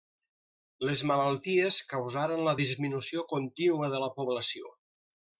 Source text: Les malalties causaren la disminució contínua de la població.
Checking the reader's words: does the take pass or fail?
pass